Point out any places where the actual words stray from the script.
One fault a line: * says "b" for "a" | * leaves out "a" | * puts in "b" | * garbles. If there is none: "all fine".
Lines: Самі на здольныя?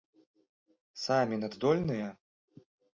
all fine